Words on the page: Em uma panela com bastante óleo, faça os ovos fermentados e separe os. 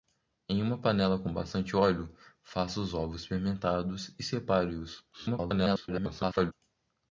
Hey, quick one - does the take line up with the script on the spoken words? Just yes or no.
no